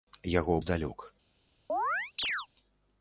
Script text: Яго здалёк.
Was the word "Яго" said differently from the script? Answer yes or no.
no